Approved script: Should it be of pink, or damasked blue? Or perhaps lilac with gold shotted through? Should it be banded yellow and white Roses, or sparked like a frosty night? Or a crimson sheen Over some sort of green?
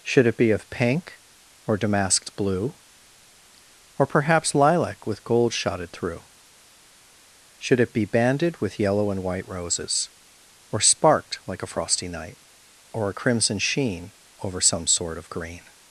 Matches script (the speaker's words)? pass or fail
fail